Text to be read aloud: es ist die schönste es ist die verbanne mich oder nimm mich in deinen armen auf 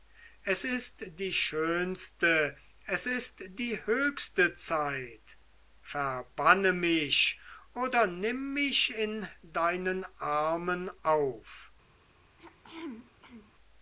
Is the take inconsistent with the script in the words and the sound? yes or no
yes